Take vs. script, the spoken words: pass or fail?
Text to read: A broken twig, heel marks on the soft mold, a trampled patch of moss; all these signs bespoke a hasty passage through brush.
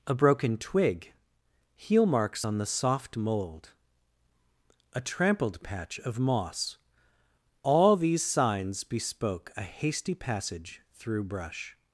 pass